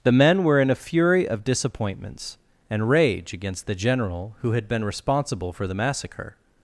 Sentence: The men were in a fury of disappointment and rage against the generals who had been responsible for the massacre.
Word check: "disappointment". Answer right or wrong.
wrong